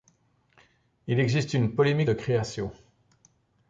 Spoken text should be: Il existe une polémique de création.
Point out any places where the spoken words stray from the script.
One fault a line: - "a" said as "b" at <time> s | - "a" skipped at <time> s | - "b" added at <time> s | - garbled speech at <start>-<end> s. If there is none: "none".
none